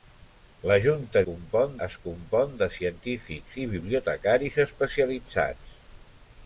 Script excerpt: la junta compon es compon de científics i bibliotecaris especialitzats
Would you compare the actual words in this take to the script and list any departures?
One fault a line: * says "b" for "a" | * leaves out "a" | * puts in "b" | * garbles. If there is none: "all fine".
all fine